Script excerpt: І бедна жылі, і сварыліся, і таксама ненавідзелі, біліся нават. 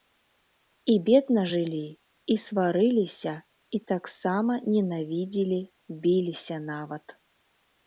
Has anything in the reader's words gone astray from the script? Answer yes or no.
no